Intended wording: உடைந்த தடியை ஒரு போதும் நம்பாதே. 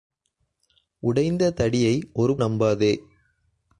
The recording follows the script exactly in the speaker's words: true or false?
false